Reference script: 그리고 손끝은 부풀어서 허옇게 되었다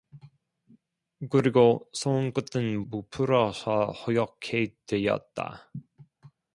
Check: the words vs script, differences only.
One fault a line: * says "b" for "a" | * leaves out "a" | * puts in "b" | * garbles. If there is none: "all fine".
all fine